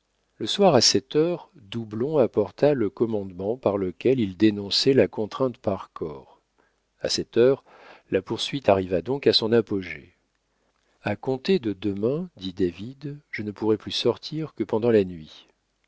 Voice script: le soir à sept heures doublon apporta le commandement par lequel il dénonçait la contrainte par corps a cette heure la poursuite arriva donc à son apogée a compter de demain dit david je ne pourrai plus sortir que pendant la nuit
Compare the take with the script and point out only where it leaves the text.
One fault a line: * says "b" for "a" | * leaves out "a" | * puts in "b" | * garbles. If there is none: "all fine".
all fine